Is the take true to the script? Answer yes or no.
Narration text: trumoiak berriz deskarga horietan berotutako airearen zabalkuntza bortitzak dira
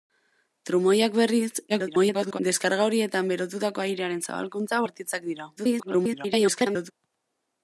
no